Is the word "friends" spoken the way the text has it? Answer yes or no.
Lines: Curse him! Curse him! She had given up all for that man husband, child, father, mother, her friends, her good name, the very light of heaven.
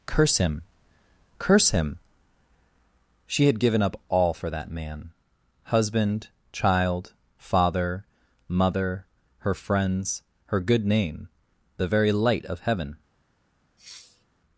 yes